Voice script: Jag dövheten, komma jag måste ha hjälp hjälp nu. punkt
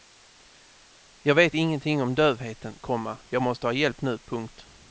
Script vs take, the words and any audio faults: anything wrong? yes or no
yes